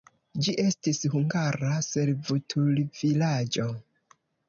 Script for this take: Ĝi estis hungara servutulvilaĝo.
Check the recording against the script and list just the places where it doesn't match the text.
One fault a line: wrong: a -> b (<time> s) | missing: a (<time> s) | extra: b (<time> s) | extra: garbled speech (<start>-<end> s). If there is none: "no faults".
no faults